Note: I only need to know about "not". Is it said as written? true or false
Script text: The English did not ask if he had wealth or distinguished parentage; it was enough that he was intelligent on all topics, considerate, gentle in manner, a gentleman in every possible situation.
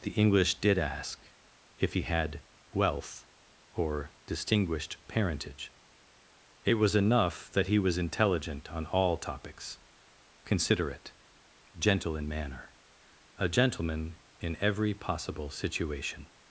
false